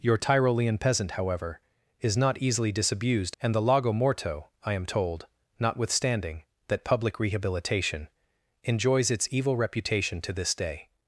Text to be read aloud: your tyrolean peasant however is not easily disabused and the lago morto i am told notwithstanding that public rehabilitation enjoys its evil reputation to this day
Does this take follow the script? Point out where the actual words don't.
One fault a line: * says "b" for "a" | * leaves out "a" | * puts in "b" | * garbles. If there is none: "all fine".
all fine